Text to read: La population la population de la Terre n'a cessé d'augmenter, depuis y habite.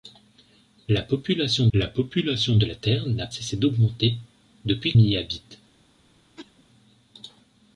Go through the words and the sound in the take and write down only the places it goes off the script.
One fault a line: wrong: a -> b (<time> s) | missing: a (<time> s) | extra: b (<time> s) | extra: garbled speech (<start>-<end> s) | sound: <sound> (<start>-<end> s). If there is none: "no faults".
sound: cough (6.4-6.6 s)